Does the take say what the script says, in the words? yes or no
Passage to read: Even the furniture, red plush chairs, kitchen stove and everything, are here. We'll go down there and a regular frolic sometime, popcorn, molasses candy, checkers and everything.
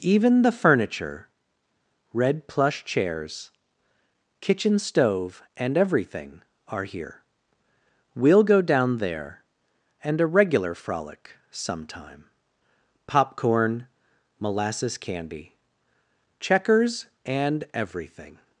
yes